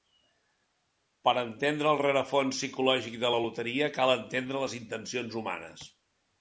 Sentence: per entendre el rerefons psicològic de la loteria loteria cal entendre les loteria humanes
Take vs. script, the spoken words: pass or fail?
fail